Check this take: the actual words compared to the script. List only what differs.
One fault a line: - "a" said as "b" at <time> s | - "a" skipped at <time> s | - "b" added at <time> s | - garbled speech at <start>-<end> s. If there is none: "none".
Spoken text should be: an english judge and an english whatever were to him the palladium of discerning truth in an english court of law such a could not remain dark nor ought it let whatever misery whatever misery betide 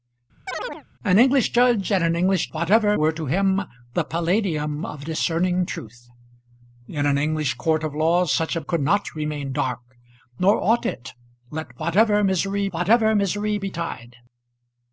none